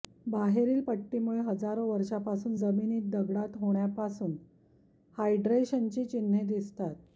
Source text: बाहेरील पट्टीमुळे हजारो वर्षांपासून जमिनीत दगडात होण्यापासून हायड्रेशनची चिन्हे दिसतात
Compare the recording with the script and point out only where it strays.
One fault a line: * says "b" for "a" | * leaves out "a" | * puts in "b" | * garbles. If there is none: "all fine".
all fine